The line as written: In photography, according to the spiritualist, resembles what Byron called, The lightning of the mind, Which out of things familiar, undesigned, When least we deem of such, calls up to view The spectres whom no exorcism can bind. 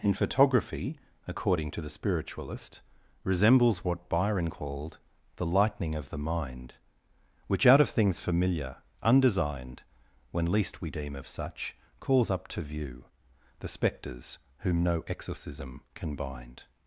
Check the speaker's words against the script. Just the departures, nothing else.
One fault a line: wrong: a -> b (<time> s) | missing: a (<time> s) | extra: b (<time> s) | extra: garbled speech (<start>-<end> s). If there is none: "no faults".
no faults